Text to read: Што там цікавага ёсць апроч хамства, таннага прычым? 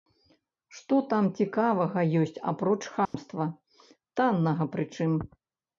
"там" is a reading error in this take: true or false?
false